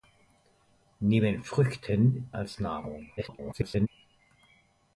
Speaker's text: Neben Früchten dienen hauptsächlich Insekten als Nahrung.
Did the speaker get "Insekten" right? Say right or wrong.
wrong